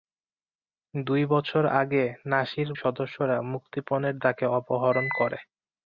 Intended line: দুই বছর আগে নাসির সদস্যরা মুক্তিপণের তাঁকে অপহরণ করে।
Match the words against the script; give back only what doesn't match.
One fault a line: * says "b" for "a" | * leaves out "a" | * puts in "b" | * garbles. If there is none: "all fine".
all fine